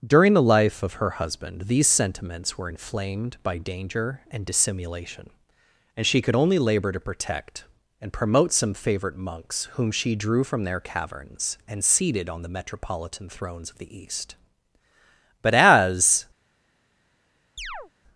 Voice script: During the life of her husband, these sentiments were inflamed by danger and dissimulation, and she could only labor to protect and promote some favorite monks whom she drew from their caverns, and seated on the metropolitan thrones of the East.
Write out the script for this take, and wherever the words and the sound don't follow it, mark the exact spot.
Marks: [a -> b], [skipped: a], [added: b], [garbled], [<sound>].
During the life of her husband, these sentiments were inflamed by danger and dissimulation, and she could only labor to protect and promote some favorite monks whom she drew from their caverns, and seated on the metropolitan thrones of the East. [added: But as] [chirp]